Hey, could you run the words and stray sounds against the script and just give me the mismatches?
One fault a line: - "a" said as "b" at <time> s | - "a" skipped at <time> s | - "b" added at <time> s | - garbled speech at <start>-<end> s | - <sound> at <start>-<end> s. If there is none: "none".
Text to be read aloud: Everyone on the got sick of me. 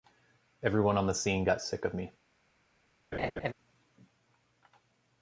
- "scene" added at 1.1 s
- laugh at 3.1-3.5 s